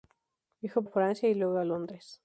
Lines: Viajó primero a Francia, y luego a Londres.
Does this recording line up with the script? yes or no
no